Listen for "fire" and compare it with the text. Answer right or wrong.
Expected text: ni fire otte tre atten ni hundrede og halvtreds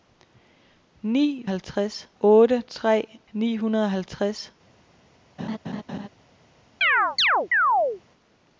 wrong